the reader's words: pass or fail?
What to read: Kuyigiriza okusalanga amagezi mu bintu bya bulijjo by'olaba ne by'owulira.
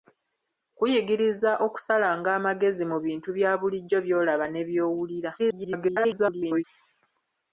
fail